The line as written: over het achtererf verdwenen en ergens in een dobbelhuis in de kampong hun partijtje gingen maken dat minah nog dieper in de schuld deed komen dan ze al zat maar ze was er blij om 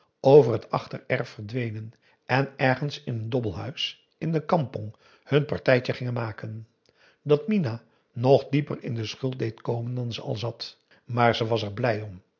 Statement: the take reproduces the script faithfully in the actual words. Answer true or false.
true